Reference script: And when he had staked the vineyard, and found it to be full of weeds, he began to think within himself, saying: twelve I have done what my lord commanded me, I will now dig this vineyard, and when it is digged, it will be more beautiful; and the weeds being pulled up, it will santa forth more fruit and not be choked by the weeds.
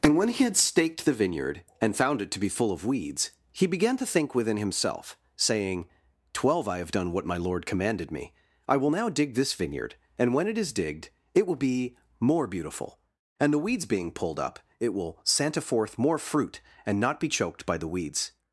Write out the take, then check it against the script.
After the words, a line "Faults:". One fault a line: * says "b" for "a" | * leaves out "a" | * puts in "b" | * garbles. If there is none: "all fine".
And when he had staked the vineyard, and found it to be full of weeds, he began to think within himself, saying: twelve I have done what my lord commanded me, I will now dig this vineyard, and when it is digged, it will be more beautiful; and the weeds being pulled up, it will santa forth more fruit and not be choked by the weeds.
Faults:
all fine